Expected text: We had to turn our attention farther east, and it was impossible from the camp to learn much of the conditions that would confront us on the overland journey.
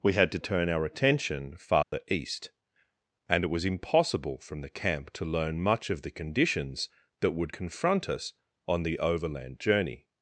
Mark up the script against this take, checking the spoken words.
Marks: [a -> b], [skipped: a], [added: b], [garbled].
We had to turn our attention farther east, and it was impossible from the camp to learn much of the conditions that would confront us on the overland journey.